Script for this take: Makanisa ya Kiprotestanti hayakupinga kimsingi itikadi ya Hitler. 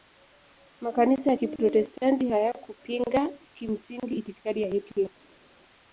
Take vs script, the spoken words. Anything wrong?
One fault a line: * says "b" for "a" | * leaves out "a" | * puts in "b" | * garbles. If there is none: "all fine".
all fine